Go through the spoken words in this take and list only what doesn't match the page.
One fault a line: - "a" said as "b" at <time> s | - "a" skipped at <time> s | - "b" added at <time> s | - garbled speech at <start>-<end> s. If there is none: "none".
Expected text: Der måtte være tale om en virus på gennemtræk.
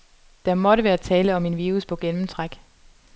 none